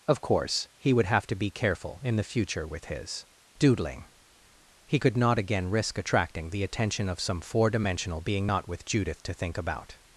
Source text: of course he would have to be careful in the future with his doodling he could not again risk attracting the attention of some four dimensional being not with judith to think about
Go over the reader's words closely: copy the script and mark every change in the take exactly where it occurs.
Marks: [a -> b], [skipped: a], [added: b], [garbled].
of course he would have to be careful in the future with his doodling he could not again risk attracting the attention of some four dimensional being not with judith to think about